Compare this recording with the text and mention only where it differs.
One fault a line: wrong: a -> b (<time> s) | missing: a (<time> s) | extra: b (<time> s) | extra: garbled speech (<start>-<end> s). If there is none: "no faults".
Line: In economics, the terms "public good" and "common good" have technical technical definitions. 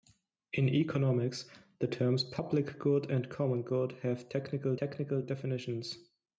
no faults